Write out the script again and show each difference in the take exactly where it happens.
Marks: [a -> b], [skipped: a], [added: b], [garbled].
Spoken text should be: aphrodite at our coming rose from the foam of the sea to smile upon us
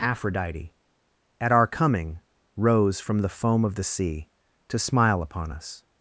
aphrodite at our coming rose from the foam of the sea to smile upon us